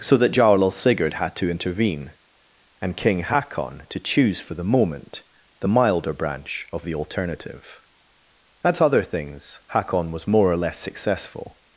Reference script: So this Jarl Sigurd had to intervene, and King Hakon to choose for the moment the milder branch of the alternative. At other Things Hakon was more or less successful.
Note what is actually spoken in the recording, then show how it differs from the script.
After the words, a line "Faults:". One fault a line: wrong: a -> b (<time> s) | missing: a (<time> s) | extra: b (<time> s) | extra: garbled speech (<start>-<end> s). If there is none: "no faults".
So that Jarl Sigurd had to intervene, and King Hakon to choose for the moment the milder branch of the alternative. At other Things Hakon was more or less successful.
Faults:
wrong: this -> that (0.2 s)